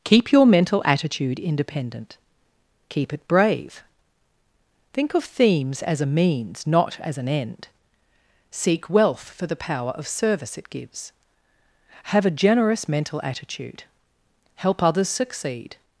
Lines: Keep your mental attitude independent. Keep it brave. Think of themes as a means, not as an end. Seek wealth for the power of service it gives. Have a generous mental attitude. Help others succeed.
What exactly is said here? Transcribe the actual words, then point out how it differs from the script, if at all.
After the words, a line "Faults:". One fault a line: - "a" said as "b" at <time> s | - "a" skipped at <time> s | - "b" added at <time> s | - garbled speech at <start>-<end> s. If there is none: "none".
Keep your mental attitude independent. Keep it brave. Think of themes as a means, not as an end. Seek wealth for the power of service it gives. Have a generous mental attitude. Help others succeed.
Faults:
none